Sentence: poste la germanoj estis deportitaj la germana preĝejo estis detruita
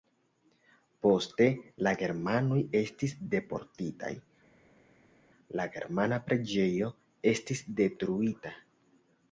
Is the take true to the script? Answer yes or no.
yes